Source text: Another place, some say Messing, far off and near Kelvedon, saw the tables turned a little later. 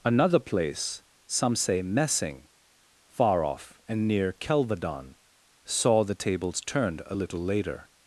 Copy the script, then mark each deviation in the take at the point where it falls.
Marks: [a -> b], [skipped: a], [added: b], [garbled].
Another place, some say Messing, far off and near Kelvedon, saw the tables turned a little later.